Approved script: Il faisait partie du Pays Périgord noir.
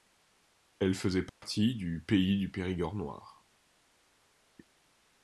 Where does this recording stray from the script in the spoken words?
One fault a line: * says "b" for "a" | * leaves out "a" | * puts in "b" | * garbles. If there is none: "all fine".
* says "Elle" for "Il"
* puts in "du"